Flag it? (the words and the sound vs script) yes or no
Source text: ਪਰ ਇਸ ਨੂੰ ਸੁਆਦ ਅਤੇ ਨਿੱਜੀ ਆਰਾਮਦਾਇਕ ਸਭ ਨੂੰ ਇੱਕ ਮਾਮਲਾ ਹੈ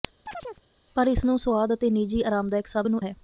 yes